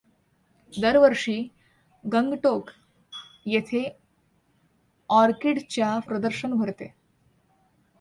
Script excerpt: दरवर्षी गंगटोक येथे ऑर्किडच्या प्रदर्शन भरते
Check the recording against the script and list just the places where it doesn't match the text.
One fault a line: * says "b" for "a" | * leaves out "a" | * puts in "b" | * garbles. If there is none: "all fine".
all fine